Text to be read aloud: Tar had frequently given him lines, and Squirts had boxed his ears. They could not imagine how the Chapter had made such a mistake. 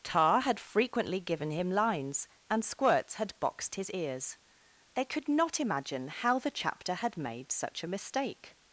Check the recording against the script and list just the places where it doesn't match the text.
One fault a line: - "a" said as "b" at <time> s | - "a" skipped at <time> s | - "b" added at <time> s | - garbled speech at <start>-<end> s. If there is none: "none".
none